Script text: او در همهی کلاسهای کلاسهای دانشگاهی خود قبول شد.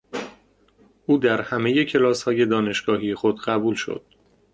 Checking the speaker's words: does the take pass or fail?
fail